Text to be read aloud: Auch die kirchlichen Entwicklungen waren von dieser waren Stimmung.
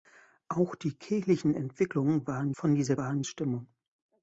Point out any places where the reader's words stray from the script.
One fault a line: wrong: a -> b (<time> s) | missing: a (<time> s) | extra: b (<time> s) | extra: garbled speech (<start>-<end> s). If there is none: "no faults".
no faults